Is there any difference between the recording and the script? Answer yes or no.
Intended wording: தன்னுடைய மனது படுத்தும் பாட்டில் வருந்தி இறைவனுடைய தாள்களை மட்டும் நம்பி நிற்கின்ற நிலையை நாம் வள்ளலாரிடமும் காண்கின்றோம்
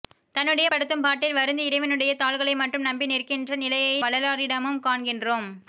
yes